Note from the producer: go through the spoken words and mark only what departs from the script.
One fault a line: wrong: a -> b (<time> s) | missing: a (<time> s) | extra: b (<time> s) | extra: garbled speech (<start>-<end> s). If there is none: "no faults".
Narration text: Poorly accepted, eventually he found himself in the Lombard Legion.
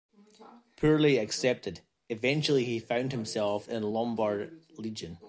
no faults